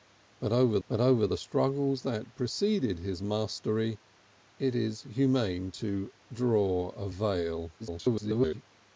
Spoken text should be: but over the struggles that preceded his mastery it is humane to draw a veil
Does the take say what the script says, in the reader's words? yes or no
no